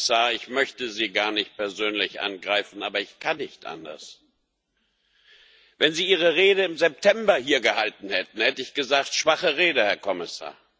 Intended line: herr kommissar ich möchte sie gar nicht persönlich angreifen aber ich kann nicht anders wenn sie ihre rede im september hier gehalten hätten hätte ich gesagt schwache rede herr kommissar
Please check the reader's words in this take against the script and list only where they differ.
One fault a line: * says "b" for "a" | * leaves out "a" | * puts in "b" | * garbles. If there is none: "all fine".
all fine